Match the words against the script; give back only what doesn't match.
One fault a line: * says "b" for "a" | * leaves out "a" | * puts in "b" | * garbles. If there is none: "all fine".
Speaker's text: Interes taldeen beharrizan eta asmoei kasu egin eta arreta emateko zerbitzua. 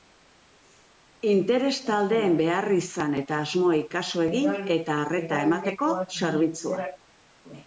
all fine